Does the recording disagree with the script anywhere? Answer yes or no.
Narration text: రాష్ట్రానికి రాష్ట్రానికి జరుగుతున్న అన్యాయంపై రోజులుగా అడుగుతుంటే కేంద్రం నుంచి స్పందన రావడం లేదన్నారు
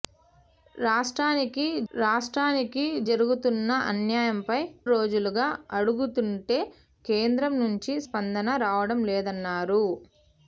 no